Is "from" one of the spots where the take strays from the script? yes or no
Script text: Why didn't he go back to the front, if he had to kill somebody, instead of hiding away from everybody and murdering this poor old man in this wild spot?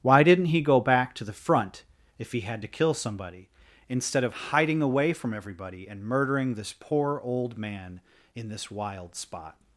no